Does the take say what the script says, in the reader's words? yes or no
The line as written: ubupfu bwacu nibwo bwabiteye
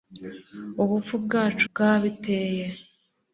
no